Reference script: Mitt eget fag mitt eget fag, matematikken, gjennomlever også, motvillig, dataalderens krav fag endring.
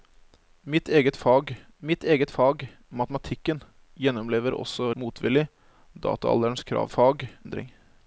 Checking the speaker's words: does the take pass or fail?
pass